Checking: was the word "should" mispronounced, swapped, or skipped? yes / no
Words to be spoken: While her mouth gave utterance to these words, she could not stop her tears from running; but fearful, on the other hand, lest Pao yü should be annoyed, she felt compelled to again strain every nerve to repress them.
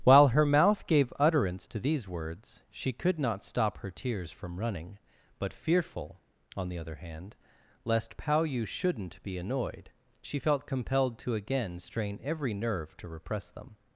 yes